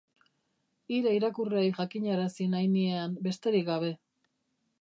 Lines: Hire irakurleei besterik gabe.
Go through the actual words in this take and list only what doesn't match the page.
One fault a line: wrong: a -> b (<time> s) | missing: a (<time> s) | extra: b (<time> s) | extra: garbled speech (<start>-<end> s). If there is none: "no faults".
extra: jakinarazi nahi niean (1.8 s)